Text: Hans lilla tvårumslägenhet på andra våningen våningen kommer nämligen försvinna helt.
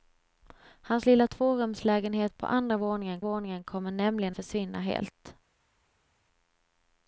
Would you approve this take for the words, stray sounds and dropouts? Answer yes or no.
yes